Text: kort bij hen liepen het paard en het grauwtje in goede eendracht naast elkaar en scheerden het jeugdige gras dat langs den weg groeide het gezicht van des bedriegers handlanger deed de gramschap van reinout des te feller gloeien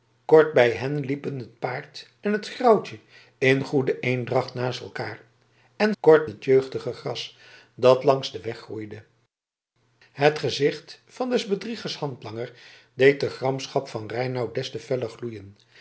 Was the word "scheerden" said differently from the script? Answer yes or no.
yes